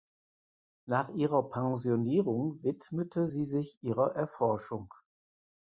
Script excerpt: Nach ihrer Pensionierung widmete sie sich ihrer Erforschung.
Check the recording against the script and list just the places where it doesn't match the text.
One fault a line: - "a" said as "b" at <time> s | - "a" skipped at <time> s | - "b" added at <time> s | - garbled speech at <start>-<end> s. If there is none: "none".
none